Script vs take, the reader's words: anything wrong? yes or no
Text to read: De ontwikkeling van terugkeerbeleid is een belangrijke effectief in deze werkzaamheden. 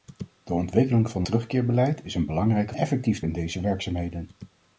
no